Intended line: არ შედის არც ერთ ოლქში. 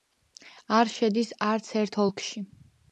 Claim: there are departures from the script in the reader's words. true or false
false